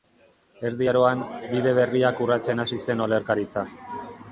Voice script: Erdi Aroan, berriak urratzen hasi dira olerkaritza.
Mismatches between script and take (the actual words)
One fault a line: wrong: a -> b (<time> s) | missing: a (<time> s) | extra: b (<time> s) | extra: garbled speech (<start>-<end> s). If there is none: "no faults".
extra: bide (1.6 s)
wrong: dira -> zen (2.9 s)